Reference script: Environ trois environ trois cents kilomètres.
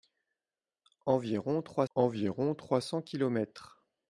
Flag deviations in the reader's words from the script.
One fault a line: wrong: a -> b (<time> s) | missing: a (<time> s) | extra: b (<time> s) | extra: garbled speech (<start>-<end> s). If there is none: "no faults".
no faults